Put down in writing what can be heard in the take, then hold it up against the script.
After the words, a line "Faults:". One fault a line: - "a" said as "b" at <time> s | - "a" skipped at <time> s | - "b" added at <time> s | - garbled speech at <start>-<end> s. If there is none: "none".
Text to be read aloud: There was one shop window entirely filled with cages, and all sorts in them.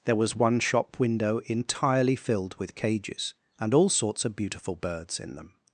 There was one shop window entirely filled with cages, and all sorts of beautiful birds in them.
Faults:
- "of beautiful birds" added at 4.2 s